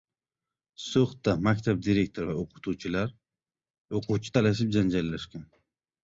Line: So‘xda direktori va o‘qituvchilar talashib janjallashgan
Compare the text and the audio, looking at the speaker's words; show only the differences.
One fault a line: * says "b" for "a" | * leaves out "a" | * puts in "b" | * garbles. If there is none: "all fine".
* puts in "maktab"
* puts in "o‘quvchi"